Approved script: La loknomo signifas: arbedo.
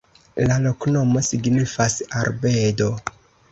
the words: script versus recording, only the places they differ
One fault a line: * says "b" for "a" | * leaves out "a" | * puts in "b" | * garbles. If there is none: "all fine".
all fine